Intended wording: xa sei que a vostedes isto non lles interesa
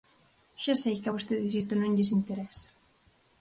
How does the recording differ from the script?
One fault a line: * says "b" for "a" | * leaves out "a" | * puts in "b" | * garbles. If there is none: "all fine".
all fine